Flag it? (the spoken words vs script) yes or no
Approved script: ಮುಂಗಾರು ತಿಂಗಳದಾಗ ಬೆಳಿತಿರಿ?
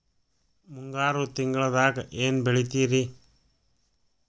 yes